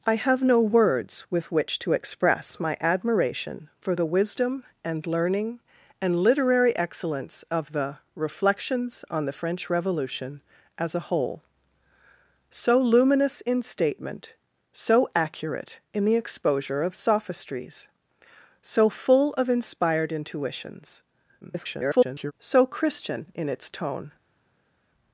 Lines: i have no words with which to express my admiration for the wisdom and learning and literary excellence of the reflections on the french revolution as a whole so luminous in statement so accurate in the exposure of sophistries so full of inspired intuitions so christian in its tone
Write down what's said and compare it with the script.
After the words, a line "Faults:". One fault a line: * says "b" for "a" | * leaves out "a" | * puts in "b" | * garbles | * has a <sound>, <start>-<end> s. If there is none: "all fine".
i have no words with which to express my admiration for the wisdom and learning and literary excellence of the reflections on the french revolution as a whole so luminous in statement so accurate in the exposure of sophistries so full of inspired intuitions [garbled] so christian in its tone
Faults:
* garbles